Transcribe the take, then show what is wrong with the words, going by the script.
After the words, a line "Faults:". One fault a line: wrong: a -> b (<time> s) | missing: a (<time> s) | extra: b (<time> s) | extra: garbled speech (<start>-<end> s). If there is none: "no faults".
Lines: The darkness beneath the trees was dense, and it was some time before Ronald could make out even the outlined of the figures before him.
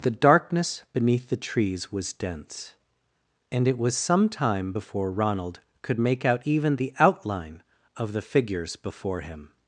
The darkness beneath the trees was dense, and it was some time before Ronald could make out even the outline of the figures before him.
Faults:
wrong: outlined -> outline (7.0 s)